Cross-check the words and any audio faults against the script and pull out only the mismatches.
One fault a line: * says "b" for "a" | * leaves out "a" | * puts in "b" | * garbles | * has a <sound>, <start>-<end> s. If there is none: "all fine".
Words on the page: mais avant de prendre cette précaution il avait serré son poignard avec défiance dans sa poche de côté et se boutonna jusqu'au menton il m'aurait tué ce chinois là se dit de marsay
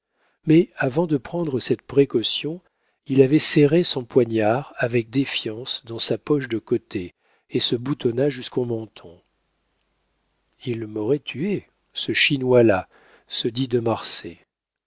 all fine